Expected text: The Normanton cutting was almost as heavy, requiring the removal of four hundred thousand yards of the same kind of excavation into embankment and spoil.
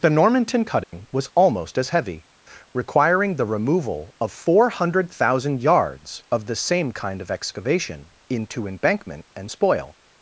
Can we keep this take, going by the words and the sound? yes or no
no